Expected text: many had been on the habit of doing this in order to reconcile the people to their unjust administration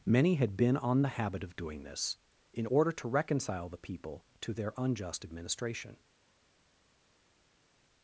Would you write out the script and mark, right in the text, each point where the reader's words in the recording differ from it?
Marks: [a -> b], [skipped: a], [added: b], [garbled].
many had been on the habit of doing this in order to reconcile the people to their unjust administration